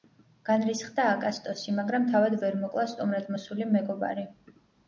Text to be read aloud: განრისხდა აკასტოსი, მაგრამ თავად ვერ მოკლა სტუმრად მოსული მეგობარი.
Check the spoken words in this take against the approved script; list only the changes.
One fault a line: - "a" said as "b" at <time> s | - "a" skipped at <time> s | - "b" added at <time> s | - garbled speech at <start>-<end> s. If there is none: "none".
none